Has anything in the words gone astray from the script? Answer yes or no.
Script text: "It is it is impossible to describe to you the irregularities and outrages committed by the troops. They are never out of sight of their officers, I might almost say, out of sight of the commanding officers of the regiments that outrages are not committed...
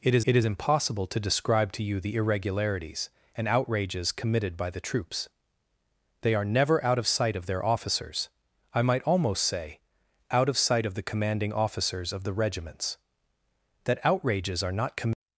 no